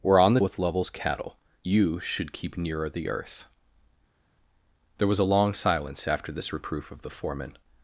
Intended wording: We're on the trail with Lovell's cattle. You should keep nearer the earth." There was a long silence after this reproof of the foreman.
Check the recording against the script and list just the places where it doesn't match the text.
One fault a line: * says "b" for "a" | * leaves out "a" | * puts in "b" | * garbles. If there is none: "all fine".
* leaves out "trail"